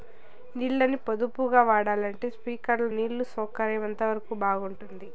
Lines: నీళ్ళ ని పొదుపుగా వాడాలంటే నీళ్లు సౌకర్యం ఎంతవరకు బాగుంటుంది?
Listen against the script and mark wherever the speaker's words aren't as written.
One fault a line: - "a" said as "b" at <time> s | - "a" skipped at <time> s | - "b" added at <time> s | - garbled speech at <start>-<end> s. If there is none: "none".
- "స్ప్రింక్లర్లు" added at 2.3 s